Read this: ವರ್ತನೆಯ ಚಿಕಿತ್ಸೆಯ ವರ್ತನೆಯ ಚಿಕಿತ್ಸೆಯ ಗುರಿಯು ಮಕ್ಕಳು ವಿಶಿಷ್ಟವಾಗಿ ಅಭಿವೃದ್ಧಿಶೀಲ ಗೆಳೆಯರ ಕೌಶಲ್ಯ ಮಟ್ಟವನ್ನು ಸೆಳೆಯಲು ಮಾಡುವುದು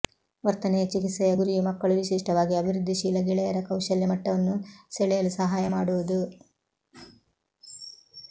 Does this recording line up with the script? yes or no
no